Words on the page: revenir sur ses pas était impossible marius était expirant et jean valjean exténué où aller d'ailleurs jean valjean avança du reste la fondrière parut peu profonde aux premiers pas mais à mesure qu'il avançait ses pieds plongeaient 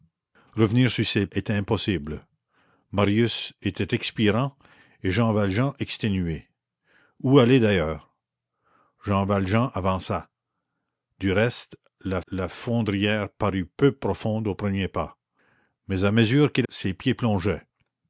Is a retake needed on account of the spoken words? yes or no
yes